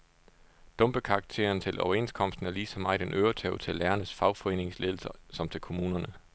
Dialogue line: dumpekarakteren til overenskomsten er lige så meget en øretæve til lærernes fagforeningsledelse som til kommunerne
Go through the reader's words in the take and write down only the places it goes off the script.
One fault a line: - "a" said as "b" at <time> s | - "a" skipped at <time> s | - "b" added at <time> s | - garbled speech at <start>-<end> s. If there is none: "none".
none